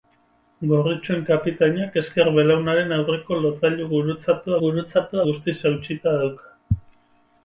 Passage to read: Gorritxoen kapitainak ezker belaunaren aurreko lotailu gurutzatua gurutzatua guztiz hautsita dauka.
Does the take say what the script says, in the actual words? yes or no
yes